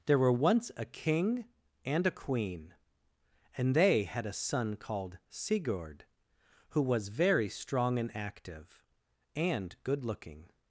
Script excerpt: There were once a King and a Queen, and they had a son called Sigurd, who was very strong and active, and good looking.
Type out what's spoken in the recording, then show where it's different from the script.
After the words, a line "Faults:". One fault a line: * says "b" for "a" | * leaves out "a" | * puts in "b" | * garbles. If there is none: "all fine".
There were once a King and a Queen, and they had a son called Sigurd, who was very strong and active, and good looking.
Faults:
all fine